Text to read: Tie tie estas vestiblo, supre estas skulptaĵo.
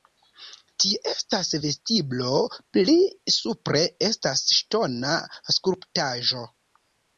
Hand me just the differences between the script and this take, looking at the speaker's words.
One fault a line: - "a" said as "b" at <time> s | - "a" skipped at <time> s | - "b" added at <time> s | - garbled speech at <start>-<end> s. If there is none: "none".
- "tie" skipped at 1.0 s
- "pli" added at 2.8 s
- "ŝtona" added at 4.6 s